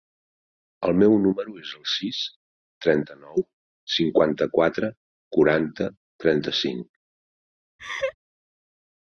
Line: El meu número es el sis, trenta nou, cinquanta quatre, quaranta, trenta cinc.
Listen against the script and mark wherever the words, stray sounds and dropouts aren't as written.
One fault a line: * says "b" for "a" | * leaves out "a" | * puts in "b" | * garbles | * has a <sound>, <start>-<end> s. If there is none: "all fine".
* has a laugh, 7.8-8.2 s